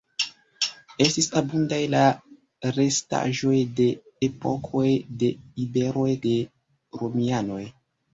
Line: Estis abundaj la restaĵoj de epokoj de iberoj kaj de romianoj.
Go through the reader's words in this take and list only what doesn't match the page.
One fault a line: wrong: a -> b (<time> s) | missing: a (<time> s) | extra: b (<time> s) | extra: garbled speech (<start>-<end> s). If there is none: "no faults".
missing: kaj (6.1 s)